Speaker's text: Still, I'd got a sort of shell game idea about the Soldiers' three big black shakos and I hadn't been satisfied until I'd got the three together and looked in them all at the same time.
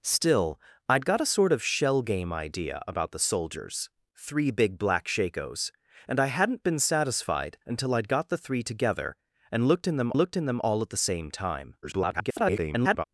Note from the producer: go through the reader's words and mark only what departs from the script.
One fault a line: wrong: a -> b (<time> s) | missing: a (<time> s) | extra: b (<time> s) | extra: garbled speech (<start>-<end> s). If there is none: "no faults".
extra: looked in them (10.2 s)
extra: garbled speech (11.8-13.0 s)